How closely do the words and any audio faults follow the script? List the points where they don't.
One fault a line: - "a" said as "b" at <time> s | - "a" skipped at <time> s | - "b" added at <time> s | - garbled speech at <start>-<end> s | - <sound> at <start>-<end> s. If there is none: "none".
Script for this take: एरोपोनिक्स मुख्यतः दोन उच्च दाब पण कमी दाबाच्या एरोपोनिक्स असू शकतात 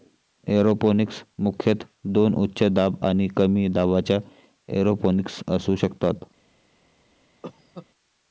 - "पण" said as "आणि" at 3.0 s
- cough at 7.4-7.9 s